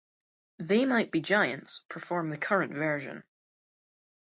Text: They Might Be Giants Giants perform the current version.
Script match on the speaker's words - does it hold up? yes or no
no